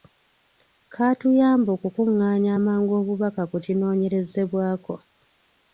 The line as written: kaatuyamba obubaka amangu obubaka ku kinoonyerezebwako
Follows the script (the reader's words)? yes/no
no